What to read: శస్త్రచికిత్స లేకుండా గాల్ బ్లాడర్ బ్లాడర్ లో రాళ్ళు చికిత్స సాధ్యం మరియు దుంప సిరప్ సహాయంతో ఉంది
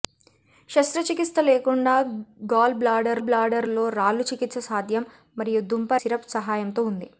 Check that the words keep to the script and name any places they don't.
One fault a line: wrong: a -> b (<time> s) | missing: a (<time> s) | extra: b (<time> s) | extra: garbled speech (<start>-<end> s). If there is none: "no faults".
no faults